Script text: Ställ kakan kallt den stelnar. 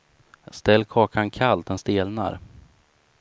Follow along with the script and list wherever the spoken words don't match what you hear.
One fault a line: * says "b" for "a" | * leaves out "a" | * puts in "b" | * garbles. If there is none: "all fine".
all fine